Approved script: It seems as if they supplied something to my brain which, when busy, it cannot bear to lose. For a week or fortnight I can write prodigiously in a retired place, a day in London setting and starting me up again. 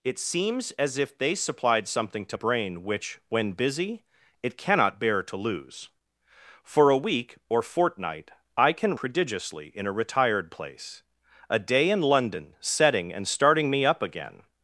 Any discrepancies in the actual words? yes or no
yes